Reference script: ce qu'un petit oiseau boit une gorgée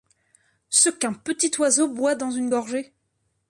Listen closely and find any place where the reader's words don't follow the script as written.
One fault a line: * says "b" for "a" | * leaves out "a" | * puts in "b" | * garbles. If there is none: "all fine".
* puts in "dans"